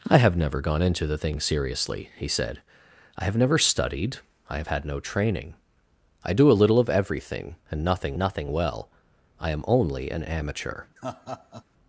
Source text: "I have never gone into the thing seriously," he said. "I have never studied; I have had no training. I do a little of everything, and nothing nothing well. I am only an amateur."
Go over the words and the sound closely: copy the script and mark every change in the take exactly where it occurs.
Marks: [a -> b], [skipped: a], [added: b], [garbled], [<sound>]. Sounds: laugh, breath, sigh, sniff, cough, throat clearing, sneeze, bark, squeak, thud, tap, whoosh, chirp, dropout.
"I have never gone into the thing seriously," he said. "I have never studied; I have had no training. I do a little of everything, and nothing nothing well. I am only an amateur." [laugh]